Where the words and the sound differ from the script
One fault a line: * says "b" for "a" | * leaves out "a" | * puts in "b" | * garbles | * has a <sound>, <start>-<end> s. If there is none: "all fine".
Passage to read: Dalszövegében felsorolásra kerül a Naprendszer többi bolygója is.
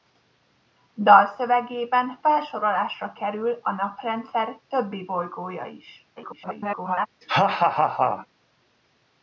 * garbles
* has a laugh, 7.2-8.3 s